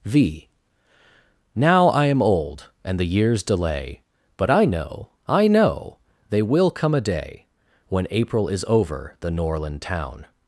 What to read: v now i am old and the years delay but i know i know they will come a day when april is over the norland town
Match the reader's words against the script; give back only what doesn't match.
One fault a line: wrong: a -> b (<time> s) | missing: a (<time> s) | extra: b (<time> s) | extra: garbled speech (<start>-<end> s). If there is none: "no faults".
no faults